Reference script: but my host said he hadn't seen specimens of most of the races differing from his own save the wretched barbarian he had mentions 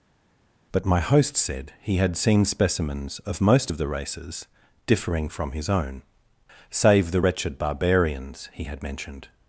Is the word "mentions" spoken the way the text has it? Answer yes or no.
no